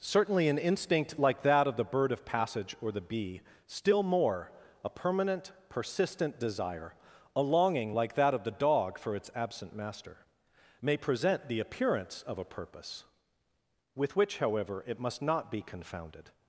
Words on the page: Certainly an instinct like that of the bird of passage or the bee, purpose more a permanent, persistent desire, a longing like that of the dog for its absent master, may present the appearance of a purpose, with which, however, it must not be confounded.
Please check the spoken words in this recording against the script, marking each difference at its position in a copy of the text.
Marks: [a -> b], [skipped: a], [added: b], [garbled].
Certainly an instinct like that of the bird of passage or the bee, [purpose -> still] more a permanent, persistent desire, a longing like that of the dog for its absent master, may present the appearance of a purpose, with which, however, it must not be confounded.